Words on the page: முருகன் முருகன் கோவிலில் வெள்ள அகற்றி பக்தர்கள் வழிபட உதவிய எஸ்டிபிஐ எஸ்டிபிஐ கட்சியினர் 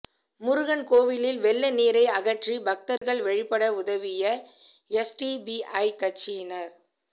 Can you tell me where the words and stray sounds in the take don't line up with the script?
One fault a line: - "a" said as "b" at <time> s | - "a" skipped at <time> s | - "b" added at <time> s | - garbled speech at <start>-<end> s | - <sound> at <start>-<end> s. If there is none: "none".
- "முருகன்" skipped at 0.8 s
- "நீரை" added at 1.7 s
- dropout at 3.0-3.0 s
- "எஸ்டிபிஐ" skipped at 5.9 s